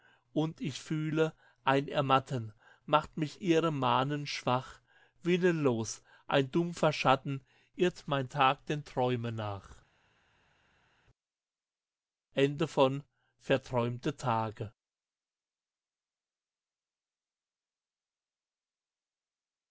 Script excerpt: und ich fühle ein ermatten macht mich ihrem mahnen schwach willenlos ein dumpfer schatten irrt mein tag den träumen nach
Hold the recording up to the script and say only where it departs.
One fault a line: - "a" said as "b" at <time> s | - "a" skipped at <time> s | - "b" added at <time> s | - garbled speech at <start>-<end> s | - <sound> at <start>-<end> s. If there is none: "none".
none